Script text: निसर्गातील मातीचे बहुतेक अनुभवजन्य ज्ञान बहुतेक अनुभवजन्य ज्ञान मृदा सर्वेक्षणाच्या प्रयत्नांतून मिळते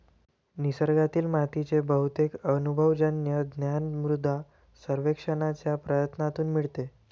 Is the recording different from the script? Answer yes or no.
yes